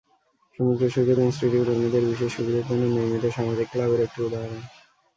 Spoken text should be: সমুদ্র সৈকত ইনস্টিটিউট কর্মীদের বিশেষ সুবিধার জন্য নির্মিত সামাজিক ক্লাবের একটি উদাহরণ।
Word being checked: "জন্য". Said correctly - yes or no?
yes